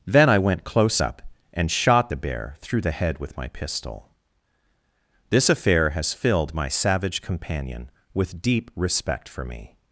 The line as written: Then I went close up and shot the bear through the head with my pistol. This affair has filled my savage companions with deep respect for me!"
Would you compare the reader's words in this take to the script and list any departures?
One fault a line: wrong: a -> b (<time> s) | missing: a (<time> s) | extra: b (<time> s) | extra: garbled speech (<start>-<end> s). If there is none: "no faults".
wrong: companions -> companion (7.2 s)